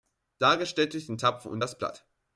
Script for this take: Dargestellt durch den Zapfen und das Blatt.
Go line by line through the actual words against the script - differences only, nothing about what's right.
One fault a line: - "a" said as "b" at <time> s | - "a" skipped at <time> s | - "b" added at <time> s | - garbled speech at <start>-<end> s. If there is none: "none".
none